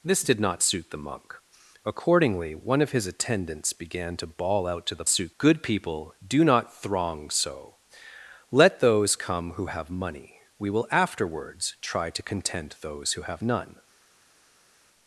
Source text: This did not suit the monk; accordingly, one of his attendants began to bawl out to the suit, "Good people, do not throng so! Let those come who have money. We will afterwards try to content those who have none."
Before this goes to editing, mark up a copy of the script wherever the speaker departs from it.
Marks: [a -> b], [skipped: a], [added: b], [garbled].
This did not suit the monk; accordingly, one of his attendants began to bawl out to the suit, "Good people, do not throng so! Let those come who have money. We will afterwards try to content those who have none."